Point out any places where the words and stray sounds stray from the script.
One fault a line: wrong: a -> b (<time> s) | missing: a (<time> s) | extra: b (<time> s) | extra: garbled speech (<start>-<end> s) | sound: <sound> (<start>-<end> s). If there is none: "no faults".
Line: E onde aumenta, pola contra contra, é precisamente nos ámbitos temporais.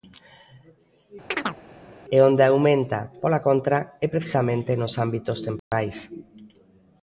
sound: chirp (1.3-1.6 s)
missing: contra (3.8 s)
sound: dropout (5.6-5.7 s)